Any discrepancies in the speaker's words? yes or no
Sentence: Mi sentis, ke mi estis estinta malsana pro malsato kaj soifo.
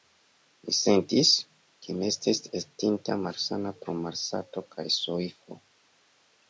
no